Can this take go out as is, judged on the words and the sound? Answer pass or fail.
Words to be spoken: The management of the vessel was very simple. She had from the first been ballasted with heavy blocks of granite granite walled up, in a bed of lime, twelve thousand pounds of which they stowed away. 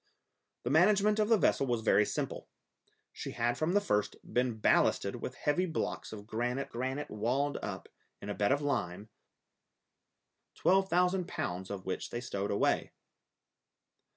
pass